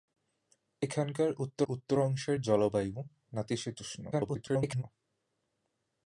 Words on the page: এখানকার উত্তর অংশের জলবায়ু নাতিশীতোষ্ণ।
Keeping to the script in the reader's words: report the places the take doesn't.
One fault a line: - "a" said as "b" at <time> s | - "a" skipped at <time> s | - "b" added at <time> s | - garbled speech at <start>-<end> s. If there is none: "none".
- "উত্তর" added at 1.7 s
- garbled speech at 4.1-4.8 s